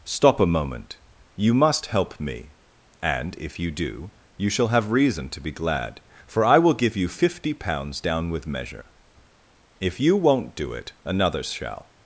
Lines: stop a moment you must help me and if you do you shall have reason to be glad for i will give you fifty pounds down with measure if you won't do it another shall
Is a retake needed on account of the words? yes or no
no